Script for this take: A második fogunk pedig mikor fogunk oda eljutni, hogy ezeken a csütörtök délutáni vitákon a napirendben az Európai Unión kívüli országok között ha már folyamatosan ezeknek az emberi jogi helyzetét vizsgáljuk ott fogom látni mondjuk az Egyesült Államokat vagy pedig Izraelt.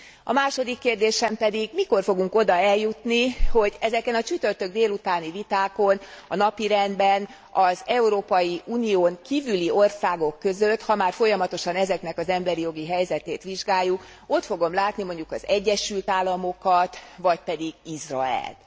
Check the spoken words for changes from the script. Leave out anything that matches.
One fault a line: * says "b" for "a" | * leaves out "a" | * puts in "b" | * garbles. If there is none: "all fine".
* says "kérdésem" for "fogunk"